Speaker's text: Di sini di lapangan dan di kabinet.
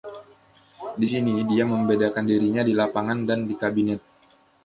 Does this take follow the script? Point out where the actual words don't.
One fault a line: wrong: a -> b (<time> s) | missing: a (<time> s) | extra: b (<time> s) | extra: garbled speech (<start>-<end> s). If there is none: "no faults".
extra: dia membedakan dirinya (1.4 s)